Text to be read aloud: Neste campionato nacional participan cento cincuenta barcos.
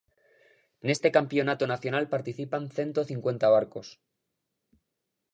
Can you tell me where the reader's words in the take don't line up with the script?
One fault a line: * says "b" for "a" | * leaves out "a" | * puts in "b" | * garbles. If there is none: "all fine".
all fine